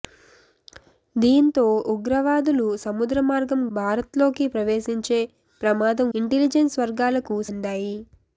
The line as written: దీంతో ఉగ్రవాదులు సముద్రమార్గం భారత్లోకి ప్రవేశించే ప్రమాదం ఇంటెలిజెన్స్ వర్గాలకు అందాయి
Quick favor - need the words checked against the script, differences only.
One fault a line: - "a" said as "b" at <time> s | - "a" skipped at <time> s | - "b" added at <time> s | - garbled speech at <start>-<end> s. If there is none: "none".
none